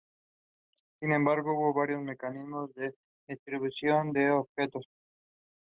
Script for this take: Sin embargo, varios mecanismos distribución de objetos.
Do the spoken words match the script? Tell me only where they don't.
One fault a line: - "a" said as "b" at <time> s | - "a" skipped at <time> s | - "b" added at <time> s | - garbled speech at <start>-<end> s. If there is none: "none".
- "hubo" added at 1.5 s
- "de" added at 2.7 s